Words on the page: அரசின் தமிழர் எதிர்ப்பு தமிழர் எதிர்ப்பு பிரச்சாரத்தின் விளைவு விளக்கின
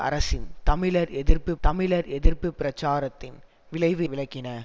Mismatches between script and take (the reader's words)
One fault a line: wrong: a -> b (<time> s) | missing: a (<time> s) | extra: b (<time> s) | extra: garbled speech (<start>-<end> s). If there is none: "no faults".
no faults